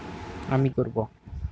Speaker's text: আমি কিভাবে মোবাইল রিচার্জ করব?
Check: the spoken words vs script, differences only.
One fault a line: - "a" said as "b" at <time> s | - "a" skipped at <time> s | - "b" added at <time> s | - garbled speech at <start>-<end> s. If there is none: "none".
- "কিভাবে মোবাইল রিচার্জ" skipped at 0.7 s